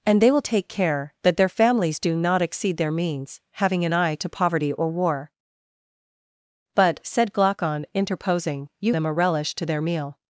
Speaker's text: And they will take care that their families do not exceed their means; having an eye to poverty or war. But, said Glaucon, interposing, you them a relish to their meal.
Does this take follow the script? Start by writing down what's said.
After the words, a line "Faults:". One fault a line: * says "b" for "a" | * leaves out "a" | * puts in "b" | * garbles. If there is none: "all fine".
And they will take care that their families do not exceed their means; having an eye to poverty or war. But, said Glaucon, interposing, you them a relish to their meal.
Faults:
all fine